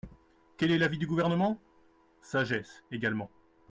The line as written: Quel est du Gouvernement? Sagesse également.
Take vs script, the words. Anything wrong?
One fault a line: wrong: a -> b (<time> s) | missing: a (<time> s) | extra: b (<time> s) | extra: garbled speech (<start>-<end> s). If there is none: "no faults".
extra: l'avis (0.8 s)